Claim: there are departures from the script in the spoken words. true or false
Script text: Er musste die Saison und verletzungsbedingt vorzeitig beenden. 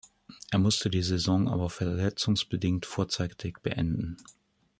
true